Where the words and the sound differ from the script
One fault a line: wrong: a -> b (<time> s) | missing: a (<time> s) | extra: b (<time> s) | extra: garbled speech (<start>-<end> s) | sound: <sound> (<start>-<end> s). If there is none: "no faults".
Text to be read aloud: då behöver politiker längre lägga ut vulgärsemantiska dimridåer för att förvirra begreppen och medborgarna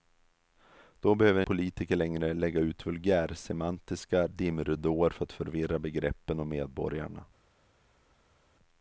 no faults